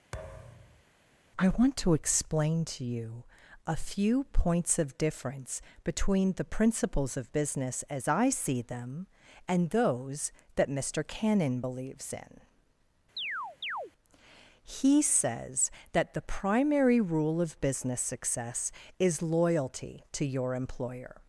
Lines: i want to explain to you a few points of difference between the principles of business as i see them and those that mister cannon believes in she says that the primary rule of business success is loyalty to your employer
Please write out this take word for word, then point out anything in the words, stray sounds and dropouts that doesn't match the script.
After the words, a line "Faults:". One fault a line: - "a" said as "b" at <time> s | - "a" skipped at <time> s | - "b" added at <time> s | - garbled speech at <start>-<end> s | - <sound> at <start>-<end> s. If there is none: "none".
i want to explain to you a few points of difference between the principles of business as i see them and those that mister cannon believes in he says that the primary rule of business success is loyalty to your employer
Faults:
- thud at 0.1-0.8 s
- chirp at 13.2-13.9 s
- "she" said as "he" at 14.6 s